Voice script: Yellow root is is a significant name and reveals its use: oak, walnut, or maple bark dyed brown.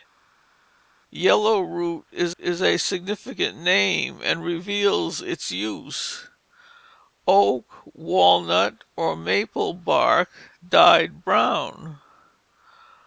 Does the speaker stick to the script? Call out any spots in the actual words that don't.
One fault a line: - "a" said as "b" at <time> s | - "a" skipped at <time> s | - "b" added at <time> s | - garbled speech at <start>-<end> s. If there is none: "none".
none